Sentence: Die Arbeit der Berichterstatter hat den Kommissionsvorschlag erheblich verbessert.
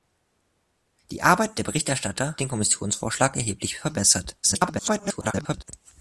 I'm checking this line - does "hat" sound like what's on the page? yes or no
no